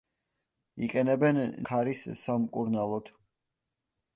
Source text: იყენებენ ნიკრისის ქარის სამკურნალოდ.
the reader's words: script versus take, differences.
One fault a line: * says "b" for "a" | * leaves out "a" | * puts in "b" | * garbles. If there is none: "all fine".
* leaves out "ნიკრისის"